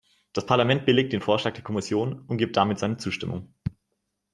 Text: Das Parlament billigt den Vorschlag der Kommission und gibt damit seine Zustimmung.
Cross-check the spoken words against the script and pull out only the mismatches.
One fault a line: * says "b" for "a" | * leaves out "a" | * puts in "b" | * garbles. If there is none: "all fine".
all fine